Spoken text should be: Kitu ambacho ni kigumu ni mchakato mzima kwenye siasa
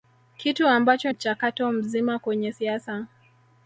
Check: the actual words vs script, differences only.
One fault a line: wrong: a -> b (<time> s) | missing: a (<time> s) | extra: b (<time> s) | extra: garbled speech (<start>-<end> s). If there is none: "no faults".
missing: ni kigumu ni (1.1 s)